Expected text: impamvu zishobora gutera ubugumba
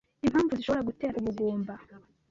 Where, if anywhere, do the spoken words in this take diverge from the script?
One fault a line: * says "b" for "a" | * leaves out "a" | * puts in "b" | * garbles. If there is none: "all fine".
all fine